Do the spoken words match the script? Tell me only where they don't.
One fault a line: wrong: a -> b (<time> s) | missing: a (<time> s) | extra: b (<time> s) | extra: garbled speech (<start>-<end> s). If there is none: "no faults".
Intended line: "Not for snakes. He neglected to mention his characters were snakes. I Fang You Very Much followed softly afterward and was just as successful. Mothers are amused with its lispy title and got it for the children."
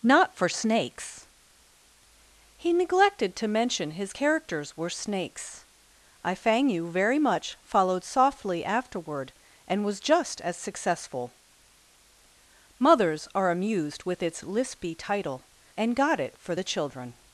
no faults